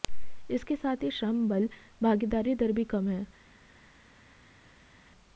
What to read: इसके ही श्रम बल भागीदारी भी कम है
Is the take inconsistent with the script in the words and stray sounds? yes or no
yes